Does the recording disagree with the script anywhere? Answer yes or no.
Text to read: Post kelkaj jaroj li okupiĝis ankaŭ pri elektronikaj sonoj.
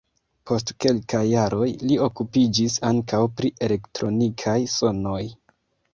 no